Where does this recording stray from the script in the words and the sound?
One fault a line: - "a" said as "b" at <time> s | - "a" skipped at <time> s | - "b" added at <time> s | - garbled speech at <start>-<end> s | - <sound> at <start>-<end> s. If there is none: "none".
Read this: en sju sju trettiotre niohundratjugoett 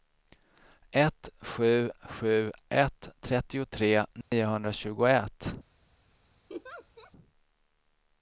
- "en" said as "ett" at 0.9 s
- "ett" added at 2.7 s
- dropout at 4.2-4.3 s
- laugh at 6.5-7.1 s